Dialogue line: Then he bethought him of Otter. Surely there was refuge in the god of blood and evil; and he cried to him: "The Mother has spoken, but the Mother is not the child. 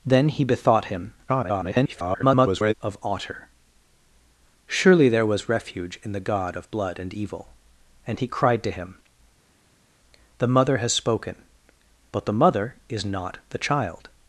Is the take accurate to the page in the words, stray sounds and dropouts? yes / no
no